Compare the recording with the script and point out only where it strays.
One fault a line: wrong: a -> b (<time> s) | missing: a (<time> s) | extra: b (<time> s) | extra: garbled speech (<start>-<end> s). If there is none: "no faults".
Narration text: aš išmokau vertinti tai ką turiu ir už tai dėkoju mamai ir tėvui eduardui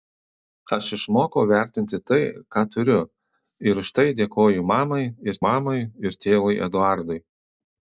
extra: mamai ir (5.5 s)